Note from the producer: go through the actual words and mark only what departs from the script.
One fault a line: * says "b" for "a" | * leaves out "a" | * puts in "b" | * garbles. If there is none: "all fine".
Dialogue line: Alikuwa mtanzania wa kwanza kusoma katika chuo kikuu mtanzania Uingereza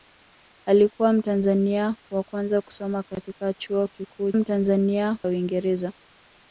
all fine